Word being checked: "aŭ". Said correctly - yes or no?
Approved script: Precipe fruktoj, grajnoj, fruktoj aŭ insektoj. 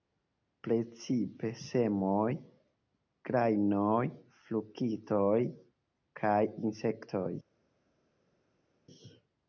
no